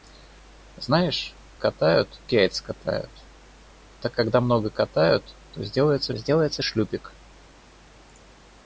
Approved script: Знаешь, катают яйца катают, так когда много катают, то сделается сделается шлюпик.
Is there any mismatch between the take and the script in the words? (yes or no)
no